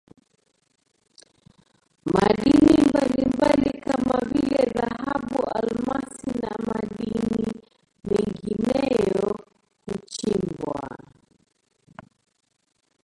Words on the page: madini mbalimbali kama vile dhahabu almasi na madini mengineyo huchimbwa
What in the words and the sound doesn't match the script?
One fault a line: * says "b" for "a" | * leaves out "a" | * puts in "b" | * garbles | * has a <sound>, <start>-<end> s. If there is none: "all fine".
all fine